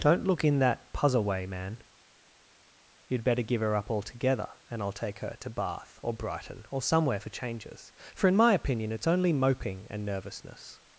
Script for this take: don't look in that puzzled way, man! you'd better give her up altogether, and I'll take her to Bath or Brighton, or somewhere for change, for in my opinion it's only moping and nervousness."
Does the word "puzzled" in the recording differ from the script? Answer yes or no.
yes